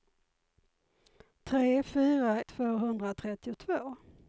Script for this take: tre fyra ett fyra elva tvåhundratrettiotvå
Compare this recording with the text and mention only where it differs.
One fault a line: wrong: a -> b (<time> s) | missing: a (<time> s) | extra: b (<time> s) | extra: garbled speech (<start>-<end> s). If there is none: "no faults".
missing: ett fyra elva (2.4 s)